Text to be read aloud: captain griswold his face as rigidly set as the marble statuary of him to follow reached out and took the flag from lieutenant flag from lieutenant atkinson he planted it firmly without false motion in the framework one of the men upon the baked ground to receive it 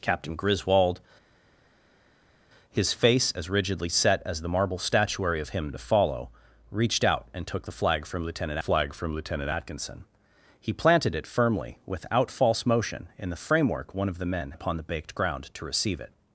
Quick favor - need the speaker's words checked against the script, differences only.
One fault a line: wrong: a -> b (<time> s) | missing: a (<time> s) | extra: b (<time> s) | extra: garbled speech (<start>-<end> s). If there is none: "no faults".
no faults